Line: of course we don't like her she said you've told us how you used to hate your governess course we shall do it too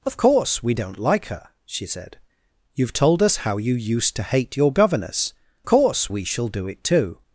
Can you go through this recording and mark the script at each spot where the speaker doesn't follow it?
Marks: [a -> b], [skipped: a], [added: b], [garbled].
of course we don't like her she said you've told us how you used to hate your governess course we shall do it too